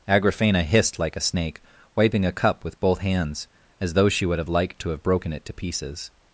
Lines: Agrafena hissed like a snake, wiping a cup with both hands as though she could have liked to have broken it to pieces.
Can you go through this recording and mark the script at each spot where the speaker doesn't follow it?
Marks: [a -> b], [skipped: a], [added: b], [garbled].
Agrafena hissed like a snake, wiping a cup with both hands as though she [could -> would] have liked to have broken it to pieces.